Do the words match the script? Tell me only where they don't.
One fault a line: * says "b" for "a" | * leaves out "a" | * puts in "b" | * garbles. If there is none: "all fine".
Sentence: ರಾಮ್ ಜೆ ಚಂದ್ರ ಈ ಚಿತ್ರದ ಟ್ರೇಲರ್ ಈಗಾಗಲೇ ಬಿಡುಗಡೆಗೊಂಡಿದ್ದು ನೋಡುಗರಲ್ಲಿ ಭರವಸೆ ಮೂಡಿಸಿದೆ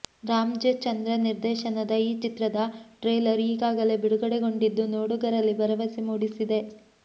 * puts in "ನಿರ್ದೇಶನದ"